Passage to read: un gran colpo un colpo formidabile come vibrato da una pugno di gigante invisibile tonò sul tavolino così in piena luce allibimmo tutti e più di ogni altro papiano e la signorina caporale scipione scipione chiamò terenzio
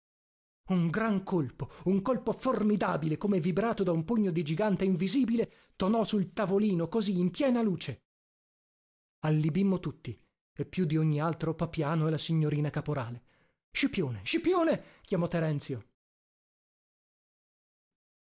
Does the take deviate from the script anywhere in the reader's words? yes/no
yes